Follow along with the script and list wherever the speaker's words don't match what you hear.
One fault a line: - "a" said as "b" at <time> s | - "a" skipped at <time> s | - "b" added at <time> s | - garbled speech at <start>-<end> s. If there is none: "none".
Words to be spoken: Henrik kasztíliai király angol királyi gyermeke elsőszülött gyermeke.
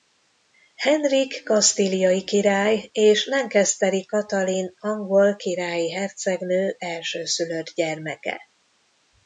- "és Lancasteri Katalin" added at 2.9 s
- "gyermeke" said as "hercegnő" at 5.9 s